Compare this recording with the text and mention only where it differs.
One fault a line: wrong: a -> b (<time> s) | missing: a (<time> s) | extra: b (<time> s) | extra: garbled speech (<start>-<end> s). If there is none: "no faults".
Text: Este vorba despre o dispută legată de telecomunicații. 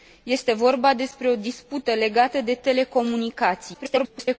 extra: garbled speech (3.7-4.4 s)